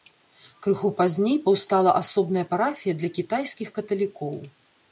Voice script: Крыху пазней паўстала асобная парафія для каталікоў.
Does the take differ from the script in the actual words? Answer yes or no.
yes